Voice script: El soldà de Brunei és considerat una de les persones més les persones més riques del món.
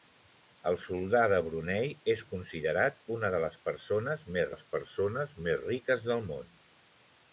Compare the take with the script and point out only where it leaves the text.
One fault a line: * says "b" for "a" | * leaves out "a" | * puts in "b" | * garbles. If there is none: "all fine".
all fine